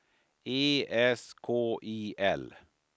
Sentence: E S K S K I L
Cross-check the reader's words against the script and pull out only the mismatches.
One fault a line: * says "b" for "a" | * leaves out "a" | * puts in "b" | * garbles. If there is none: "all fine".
* leaves out "S K"